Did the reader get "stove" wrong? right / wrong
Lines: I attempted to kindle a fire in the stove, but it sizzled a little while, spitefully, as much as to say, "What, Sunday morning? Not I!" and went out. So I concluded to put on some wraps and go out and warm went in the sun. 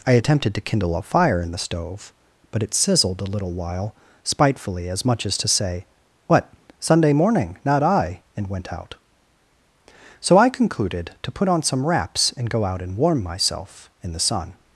right